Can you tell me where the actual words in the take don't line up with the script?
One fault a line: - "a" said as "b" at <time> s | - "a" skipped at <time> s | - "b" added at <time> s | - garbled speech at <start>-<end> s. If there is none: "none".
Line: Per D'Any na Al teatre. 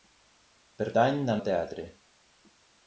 none